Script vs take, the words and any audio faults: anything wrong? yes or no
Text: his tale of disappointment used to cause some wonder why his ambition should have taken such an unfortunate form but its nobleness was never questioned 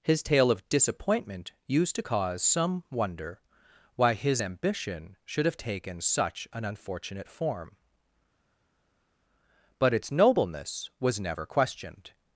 no